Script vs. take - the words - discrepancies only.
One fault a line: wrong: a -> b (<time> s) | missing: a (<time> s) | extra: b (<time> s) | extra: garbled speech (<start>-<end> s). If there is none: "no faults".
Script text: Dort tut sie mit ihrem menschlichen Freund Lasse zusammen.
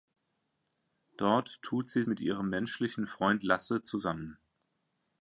no faults